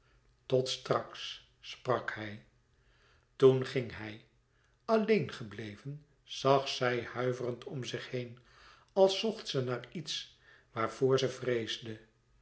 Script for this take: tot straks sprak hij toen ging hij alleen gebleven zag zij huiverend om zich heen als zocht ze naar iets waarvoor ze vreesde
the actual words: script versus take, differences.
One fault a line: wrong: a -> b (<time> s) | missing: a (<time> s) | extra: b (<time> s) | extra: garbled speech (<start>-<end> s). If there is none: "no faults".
no faults